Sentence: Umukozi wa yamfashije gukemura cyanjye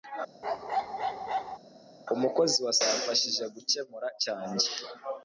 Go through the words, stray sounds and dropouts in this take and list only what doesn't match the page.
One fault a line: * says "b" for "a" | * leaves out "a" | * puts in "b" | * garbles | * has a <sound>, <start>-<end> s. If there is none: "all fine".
* has a bark, 0.4-1.6 s